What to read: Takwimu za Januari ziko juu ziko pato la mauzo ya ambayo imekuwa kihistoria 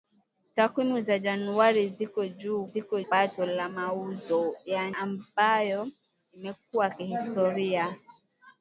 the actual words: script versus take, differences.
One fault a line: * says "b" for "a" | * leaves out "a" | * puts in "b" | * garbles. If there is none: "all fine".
all fine